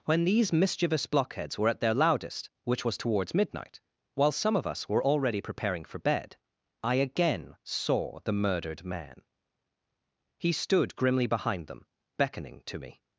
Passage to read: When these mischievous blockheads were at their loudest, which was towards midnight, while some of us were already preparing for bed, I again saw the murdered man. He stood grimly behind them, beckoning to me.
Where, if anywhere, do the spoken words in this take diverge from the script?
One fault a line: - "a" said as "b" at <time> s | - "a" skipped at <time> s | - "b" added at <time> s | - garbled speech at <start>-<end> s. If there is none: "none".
none